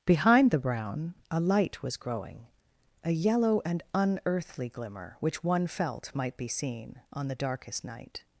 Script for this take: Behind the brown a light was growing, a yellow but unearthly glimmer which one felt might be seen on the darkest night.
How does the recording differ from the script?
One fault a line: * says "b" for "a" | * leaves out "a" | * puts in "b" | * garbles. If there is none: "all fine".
* says "and" for "but"